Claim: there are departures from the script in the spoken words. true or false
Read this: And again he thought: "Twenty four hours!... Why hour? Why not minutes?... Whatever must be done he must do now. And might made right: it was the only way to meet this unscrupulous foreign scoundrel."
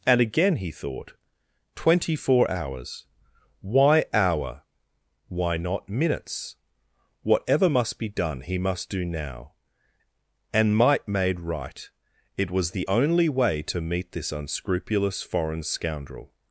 false